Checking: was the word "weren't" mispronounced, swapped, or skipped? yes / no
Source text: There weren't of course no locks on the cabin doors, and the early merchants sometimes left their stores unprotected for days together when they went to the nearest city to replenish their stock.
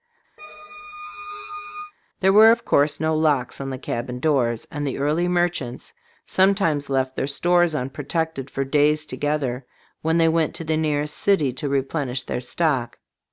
yes